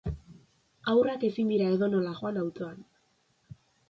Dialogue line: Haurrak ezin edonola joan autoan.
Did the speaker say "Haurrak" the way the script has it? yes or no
yes